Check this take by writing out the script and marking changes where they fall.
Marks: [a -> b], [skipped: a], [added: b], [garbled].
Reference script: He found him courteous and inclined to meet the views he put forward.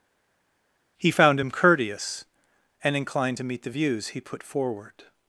He found him courteous and inclined to meet the views he put forward.